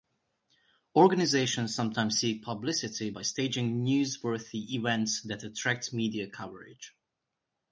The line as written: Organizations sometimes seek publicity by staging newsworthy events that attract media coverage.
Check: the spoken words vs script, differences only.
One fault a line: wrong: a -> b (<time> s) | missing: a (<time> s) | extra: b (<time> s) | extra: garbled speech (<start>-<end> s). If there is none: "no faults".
no faults